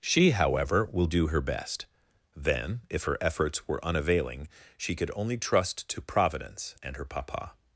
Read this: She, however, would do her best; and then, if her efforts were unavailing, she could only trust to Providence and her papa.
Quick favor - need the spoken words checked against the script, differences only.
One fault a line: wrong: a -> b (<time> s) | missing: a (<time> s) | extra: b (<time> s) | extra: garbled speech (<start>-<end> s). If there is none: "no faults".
wrong: would -> will (0.9 s)
missing: and (1.9 s)